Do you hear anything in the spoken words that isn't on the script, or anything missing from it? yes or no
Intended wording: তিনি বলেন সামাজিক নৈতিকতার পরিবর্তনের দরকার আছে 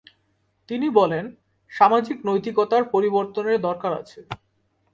no